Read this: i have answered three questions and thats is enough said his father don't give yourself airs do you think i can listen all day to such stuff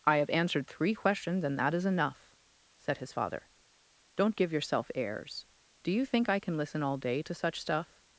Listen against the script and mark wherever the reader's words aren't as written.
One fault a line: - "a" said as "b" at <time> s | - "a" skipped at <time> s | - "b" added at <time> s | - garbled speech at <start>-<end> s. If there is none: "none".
- "thats" said as "that" at 1.6 s